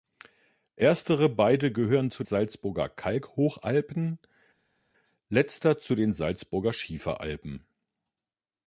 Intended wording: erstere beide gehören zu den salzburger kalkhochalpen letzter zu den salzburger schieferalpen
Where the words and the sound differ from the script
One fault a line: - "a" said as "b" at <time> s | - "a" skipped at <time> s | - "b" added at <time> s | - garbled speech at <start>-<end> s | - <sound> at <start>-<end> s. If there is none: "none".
- "den" skipped at 2.2 s